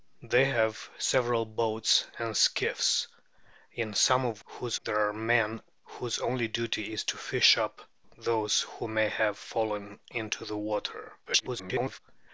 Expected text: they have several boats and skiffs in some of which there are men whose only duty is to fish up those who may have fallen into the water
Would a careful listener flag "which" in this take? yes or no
yes